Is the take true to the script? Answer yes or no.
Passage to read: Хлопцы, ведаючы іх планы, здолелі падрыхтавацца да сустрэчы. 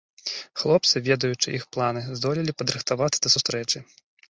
yes